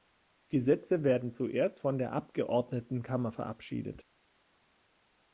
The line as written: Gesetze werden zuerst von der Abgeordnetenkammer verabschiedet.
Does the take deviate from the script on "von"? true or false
false